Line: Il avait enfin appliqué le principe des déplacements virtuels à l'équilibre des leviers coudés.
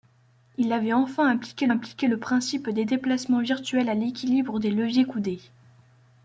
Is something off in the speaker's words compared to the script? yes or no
yes